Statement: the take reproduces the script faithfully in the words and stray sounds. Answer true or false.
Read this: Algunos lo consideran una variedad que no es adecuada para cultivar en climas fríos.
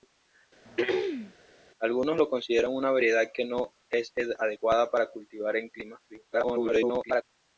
false